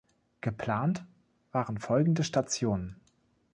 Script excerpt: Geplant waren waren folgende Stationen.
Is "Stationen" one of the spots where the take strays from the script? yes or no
no